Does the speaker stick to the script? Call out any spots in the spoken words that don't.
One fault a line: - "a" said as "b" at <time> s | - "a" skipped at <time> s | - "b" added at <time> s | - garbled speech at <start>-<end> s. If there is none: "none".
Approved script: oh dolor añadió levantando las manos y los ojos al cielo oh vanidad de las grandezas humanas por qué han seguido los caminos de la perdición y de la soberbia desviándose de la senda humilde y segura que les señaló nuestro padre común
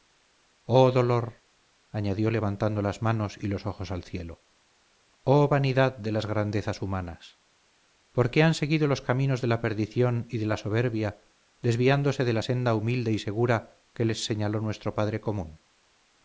none